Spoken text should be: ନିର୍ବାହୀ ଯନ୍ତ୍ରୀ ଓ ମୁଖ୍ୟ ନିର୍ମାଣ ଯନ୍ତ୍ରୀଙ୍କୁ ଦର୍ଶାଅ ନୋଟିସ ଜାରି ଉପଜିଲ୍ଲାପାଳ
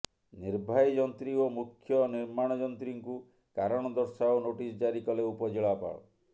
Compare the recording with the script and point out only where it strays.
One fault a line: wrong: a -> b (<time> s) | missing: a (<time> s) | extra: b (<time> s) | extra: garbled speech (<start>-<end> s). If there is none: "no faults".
extra: କାରଣ (3.6 s)
extra: କଲେ (5.1 s)